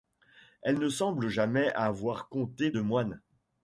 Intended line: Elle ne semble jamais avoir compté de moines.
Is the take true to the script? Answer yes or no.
yes